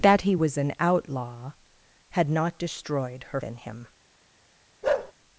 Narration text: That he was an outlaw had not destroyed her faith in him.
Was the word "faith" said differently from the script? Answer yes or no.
yes